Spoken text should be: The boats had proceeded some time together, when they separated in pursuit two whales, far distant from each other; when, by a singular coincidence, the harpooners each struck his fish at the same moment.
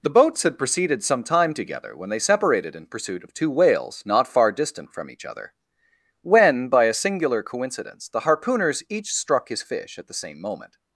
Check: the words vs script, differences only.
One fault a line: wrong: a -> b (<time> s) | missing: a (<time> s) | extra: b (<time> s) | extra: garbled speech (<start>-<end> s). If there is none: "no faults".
extra: of (3.2 s)
extra: not (4.0 s)